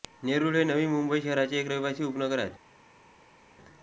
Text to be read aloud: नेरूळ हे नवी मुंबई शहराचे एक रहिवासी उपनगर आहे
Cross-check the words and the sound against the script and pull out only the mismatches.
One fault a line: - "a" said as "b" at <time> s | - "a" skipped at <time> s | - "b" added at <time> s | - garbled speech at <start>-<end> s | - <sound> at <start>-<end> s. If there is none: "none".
none